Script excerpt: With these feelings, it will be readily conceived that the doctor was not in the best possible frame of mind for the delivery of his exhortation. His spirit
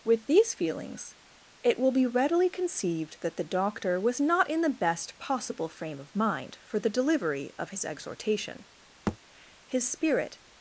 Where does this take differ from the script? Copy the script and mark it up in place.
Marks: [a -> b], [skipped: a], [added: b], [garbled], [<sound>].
With these feelings, it will be readily conceived that the doctor was not in the best possible frame of mind for the delivery of his exhortation. [thud] His spirit